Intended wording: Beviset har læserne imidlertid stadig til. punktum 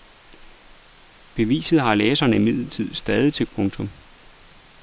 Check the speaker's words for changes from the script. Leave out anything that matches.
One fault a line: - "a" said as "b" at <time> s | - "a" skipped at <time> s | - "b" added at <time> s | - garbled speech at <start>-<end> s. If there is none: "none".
none